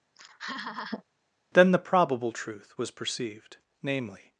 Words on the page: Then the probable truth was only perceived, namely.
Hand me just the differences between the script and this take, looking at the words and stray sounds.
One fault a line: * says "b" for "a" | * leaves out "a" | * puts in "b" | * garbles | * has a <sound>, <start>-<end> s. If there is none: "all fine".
* has a laugh, 0.1-1.0 s
* leaves out "only"